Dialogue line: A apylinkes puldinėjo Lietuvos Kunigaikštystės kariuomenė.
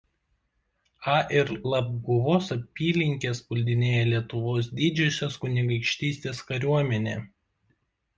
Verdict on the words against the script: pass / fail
fail